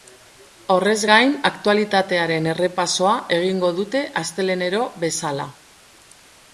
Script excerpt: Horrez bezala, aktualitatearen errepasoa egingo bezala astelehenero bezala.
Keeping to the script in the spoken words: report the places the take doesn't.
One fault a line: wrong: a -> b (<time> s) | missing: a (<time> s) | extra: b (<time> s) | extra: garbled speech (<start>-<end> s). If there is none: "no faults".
wrong: bezala -> gain (1.1 s)
wrong: bezala -> dute (3.8 s)